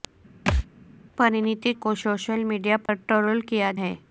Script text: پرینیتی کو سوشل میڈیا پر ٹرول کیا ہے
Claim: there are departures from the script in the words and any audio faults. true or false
true